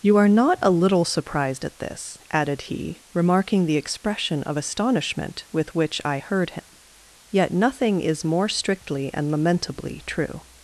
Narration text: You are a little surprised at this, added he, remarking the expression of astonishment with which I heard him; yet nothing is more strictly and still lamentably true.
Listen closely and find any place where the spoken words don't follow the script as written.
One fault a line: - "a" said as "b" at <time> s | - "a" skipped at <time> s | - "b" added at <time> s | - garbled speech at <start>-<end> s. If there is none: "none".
- "not" added at 0.3 s
- "still" skipped at 9.3 s